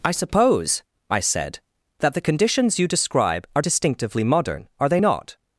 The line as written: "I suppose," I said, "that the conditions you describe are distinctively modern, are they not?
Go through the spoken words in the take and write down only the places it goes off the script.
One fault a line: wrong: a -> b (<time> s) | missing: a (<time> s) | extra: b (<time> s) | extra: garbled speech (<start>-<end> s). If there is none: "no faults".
no faults